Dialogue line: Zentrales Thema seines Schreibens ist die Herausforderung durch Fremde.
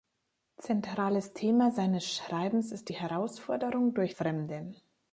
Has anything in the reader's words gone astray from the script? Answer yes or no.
no